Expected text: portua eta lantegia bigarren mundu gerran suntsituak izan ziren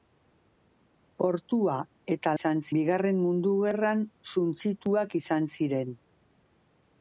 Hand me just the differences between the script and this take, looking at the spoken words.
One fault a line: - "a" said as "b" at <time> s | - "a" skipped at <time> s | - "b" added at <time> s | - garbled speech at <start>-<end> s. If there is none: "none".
- "lantegia" said as "izan" at 2.4 s